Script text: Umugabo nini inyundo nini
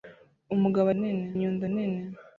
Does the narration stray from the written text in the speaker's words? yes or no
no